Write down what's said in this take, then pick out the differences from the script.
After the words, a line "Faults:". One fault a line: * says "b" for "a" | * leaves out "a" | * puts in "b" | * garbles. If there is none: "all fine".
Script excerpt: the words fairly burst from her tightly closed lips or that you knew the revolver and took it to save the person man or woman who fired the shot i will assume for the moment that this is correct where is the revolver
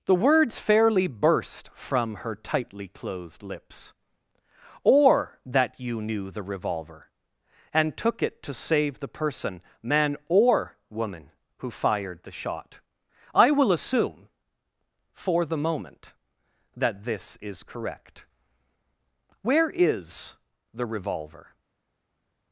the words fairly burst from her tightly closed lips or that you knew the revolver and took it to save the person man or woman who fired the shot i will assume for the moment that this is correct where is the revolver
Faults:
all fine